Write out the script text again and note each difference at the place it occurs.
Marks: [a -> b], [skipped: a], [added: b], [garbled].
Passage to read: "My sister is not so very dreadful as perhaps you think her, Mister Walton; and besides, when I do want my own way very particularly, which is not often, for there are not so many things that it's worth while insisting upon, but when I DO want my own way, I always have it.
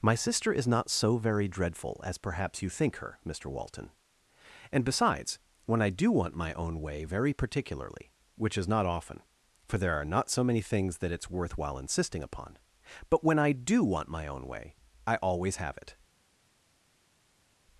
"My sister is not so very dreadful as perhaps you think her, Mister Walton; and besides, when I do want my own way very particularly, which is not often, for there are not so many things that it's worth while insisting upon, but when I DO want my own way, I always have it.